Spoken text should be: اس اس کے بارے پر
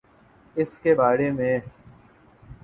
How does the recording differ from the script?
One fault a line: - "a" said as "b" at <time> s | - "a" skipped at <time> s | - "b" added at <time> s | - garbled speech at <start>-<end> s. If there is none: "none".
- "اس" skipped at 0.8 s
- "پر" said as "میں" at 1.3 s